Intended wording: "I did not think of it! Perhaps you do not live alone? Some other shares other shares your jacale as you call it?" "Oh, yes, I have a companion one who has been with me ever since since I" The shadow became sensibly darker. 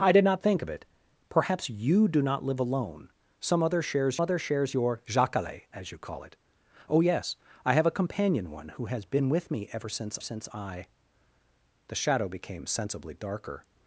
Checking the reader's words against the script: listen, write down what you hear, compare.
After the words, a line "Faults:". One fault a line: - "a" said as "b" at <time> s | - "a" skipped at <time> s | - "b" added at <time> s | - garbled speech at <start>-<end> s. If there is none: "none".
"I did not think of it! Perhaps you do not live alone? Some other shares other shares your jacale as you call it?" "Oh, yes, I have a companion one who has been with me ever since since I" The shadow became sensibly darker.
Faults:
none